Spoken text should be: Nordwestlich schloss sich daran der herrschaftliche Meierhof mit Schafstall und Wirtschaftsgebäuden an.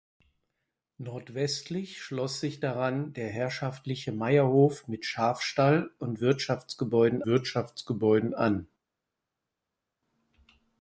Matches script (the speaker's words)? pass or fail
fail